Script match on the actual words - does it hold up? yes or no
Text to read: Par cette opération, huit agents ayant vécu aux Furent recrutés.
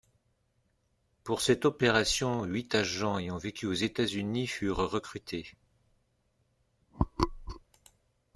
no